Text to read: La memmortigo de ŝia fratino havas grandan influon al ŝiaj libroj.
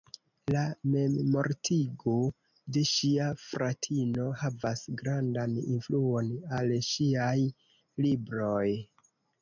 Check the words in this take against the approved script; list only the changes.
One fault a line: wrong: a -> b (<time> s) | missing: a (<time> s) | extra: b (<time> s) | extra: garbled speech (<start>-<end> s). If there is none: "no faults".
no faults